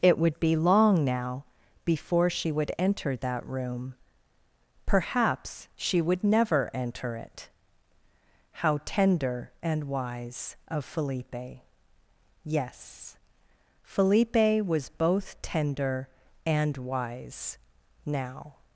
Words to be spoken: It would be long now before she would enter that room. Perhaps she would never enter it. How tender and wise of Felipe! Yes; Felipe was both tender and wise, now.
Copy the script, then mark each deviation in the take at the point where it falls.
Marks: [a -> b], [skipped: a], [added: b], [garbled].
It would be long now before she would enter that room. Perhaps she would never enter it. How tender and wise of Felipe! Yes; Felipe was both tender and wise, now.